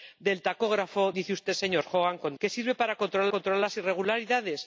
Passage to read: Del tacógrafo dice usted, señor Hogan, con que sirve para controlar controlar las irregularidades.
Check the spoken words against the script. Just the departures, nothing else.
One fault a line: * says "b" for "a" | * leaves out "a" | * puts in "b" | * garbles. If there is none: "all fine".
all fine